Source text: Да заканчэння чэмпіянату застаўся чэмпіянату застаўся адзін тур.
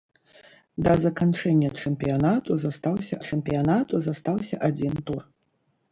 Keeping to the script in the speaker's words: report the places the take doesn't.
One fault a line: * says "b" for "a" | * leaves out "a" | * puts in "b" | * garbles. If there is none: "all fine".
all fine